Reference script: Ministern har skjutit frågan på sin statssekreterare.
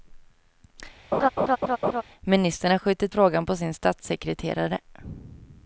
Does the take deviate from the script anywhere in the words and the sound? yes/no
yes